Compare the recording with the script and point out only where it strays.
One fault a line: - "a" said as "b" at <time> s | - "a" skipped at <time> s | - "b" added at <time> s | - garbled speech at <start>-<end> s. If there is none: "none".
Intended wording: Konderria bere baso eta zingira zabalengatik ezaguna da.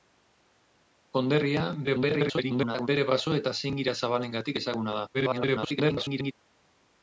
- garbled speech at 1.8-2.9 s
- garbled speech at 5.1-6.3 s